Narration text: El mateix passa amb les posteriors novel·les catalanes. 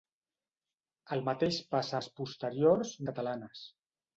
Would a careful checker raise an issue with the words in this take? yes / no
yes